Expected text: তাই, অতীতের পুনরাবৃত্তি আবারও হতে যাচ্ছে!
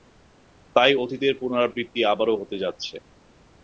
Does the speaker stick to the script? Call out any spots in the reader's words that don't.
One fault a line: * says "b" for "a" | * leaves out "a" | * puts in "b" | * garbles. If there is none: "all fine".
all fine